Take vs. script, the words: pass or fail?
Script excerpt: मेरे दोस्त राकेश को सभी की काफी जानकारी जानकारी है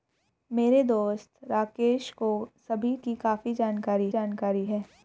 pass